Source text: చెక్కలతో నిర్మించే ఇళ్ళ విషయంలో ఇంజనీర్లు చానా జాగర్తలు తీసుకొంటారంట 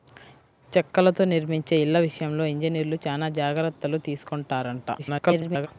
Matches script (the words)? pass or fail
fail